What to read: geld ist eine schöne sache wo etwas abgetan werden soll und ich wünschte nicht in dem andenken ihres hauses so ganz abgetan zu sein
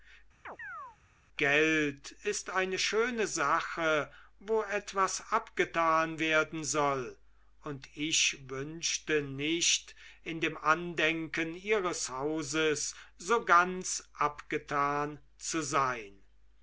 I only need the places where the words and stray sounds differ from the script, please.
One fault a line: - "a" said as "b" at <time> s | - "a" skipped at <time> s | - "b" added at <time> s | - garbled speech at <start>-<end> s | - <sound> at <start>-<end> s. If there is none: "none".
- chirp at 0.4-1.0 s